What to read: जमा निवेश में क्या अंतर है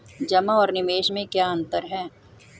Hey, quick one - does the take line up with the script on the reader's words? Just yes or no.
no